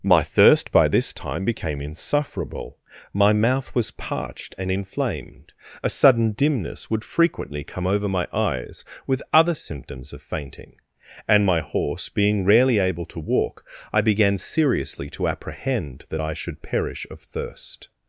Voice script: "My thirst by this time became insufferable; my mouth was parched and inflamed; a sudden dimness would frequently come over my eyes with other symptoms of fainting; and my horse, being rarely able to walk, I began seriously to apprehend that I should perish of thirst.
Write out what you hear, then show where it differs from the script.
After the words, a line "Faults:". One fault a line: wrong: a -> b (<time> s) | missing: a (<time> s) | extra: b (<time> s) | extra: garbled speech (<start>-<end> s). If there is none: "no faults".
"My thirst by this time became insufferable; my mouth was parched and inflamed; a sudden dimness would frequently come over my eyes with other symptoms of fainting; and my horse, being rarely able to walk, I began seriously to apprehend that I should perish of thirst.
Faults:
no faults